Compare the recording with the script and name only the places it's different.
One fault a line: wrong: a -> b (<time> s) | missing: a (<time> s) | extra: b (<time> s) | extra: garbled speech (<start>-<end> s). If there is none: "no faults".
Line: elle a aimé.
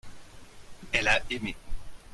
no faults